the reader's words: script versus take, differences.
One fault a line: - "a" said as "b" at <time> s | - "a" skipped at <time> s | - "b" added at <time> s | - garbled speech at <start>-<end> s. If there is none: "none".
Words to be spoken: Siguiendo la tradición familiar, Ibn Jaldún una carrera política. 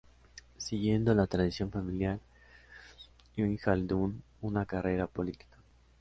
none